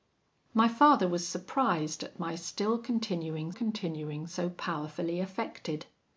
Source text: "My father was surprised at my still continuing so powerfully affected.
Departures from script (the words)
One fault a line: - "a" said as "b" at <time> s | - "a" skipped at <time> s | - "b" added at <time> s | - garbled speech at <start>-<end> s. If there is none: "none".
- "continuing" added at 3.5 s